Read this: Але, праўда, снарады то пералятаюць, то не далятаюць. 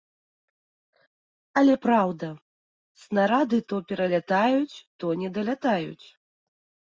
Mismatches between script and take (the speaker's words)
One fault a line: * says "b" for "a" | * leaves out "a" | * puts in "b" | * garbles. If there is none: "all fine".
all fine